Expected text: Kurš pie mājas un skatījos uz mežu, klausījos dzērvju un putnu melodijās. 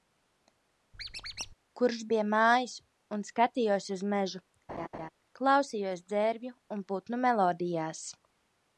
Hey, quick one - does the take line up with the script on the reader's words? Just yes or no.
yes